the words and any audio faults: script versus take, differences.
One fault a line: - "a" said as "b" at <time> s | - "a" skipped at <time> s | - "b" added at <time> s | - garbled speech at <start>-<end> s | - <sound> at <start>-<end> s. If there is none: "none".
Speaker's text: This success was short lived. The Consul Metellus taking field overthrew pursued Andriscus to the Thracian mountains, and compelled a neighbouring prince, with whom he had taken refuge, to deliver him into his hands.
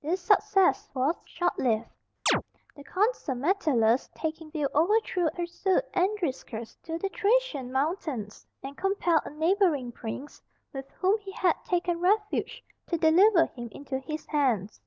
- chirp at 2.3-2.4 s